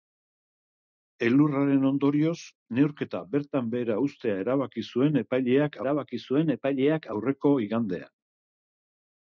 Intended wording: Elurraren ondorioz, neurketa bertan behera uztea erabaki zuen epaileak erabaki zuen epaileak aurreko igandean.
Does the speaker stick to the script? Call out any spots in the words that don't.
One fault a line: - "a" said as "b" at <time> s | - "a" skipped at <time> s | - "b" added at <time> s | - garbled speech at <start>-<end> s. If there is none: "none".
none